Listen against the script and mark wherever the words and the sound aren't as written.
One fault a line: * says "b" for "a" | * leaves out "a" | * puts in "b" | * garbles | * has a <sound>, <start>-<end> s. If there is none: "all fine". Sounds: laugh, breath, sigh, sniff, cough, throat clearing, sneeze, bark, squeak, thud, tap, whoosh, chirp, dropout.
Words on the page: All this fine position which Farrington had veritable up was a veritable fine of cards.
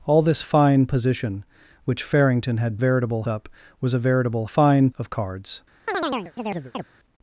* has a chirp, 5.9-6.9 s